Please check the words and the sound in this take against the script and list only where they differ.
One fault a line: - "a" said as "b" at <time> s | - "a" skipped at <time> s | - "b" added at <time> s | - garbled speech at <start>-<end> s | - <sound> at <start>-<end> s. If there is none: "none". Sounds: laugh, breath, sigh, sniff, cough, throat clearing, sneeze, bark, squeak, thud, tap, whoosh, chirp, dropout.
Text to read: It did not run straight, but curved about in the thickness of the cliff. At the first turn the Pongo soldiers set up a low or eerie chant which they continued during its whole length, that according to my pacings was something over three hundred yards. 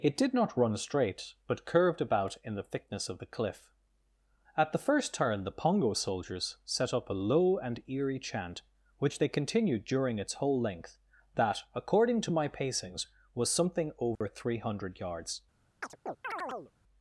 - "or" said as "and" at 7.6 s
- dropout at 14.2-14.2 s
- chirp at 15.8-16.7 s